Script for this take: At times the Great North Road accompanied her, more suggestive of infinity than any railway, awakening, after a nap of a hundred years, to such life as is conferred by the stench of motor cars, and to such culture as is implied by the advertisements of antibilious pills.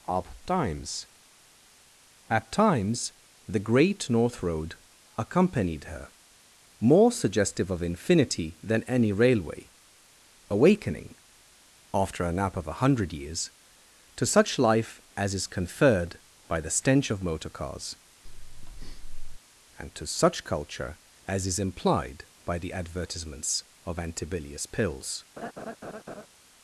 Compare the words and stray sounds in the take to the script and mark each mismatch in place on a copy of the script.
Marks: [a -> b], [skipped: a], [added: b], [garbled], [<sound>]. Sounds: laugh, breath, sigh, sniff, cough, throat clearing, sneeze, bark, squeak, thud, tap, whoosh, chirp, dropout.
[added: up times] At times the Great North Road accompanied her, more suggestive of infinity than any railway, awakening, after a nap of a hundred years, to such life as is conferred by the stench of motor cars, [breath] and to such culture as is implied by the advertisements of antibilious pills. [laugh]